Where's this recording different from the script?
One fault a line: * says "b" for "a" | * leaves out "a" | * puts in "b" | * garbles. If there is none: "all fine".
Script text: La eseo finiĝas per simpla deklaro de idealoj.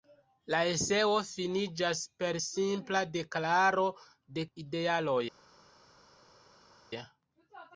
all fine